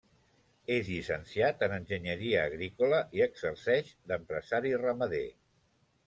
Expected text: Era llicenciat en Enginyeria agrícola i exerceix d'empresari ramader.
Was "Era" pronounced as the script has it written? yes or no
no